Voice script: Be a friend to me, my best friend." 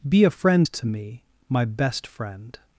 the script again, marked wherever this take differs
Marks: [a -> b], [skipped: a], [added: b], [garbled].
Be a friend to me, my best friend."